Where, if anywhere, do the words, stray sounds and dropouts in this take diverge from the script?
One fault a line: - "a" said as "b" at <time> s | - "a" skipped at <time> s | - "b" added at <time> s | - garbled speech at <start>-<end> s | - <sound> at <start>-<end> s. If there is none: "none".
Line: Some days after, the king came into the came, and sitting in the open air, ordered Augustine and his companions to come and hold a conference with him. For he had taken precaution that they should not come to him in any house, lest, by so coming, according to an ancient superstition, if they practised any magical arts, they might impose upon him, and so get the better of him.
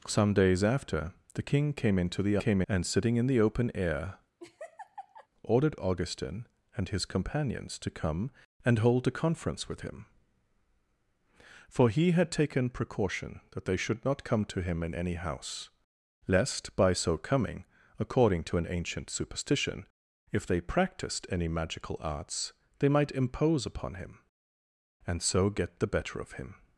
- laugh at 4.4-5.3 s